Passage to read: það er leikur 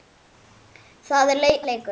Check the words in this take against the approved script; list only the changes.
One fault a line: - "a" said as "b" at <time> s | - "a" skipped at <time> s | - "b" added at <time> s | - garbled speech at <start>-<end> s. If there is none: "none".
none